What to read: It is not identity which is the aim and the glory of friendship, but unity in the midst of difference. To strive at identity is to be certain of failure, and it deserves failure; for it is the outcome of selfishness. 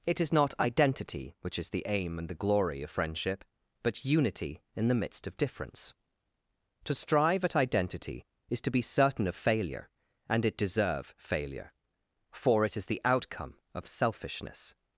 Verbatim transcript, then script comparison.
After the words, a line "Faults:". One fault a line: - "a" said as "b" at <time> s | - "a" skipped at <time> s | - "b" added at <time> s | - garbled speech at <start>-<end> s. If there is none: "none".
It is not identity which is the aim and the glory of friendship, but unity in the midst of difference. To strive at identity is to be certain of failure, and it deserve failure; for it is the outcome of selfishness.
Faults:
- "deserves" said as "deserve" at 10.6 s